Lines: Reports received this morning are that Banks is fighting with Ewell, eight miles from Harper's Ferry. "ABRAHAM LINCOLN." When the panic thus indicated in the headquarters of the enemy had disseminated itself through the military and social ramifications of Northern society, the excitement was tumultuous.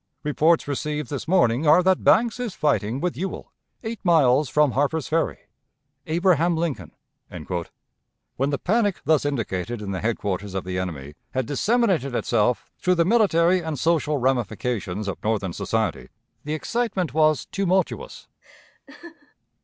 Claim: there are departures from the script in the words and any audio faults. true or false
true